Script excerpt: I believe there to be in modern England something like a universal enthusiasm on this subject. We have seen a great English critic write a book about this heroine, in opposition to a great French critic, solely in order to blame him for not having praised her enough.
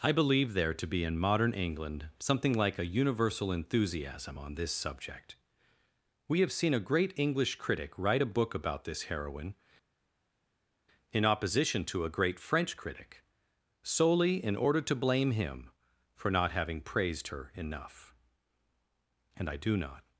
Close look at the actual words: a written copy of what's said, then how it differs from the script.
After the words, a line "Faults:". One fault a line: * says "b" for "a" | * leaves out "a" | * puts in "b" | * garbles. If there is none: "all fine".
I believe there to be in modern England something like a universal enthusiasm on this subject. We have seen a great English critic write a book about this heroine, in opposition to a great French critic, solely in order to blame him for not having praised her enough. And I do not
Faults:
* puts in "And I do not"